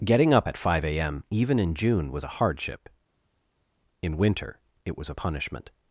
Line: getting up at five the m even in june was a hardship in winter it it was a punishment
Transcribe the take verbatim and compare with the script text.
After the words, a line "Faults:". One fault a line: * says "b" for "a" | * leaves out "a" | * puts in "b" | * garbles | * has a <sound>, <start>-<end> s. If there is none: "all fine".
getting up at five a m even in june was a hardship in winter it was a punishment
Faults:
* says "a" for "the"
* leaves out "it"